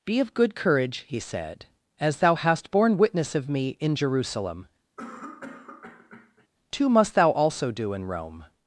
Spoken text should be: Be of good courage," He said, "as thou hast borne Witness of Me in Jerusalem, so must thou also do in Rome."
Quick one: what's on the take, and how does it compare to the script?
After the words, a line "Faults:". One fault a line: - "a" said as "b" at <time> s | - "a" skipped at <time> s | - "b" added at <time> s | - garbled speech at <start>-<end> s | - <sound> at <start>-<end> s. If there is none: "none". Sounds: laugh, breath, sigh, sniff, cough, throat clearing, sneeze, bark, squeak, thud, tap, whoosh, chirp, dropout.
Be of good courage," He said, "as thou hast borne Witness of Me in Jerusalem, too must thou also do in Rome."
Faults:
- cough at 5.0-6.5 s
- "so" said as "too" at 6.7 s